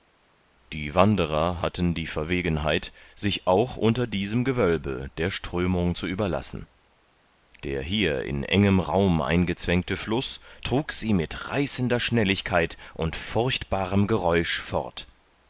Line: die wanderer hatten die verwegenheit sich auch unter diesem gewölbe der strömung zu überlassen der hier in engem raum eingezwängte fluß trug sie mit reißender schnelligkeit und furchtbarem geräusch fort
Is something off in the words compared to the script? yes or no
no